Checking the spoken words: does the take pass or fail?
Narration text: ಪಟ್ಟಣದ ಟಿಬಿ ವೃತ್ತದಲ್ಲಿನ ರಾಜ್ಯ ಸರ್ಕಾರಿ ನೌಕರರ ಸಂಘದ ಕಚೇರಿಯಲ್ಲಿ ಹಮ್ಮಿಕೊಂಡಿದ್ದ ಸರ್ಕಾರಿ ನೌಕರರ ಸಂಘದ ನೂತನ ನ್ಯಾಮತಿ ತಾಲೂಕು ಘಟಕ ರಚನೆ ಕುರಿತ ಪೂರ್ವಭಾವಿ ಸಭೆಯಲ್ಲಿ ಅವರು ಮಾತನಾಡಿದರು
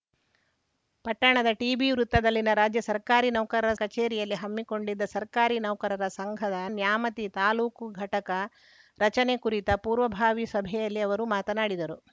fail